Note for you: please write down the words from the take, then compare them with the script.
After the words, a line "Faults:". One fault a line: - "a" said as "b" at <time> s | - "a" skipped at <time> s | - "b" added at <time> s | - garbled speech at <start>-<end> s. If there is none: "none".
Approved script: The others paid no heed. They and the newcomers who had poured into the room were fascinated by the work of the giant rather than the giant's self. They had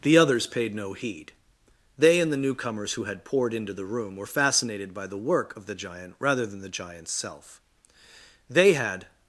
The others paid no heed. They and the newcomers who had poured into the room were fascinated by the work of the giant rather than the giant's self. They had
Faults:
none